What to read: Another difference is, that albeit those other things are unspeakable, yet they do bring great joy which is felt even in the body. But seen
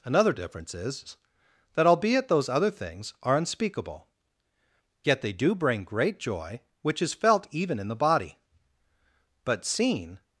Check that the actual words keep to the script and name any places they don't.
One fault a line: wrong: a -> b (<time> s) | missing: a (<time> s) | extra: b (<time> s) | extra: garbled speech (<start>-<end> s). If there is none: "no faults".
no faults